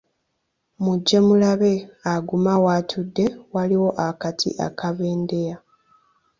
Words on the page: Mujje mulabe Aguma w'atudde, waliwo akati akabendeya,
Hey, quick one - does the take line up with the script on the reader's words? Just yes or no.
yes